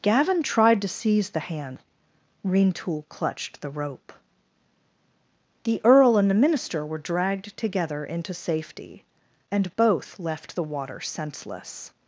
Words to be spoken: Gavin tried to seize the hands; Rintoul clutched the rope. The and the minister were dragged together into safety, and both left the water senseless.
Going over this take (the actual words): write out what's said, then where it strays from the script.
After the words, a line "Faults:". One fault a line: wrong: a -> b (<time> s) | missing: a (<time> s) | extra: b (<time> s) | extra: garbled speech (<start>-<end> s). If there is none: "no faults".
Gavin tried to seize the hand; Rintoul clutched the rope. The earl and the minister were dragged together into safety, and both left the water senseless.
Faults:
wrong: hands -> hand (1.4 s)
extra: earl (5.8 s)